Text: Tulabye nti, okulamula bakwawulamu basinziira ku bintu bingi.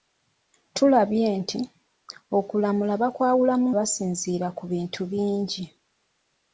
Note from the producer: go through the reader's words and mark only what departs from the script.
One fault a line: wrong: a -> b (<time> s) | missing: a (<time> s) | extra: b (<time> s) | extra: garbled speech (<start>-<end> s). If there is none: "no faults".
no faults